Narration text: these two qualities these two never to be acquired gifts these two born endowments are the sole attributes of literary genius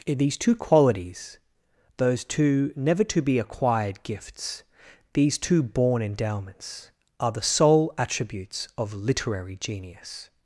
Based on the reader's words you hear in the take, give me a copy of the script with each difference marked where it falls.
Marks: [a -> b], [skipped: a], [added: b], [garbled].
these two qualities [these -> those] two never to be acquired gifts these two born endowments are the sole attributes of literary genius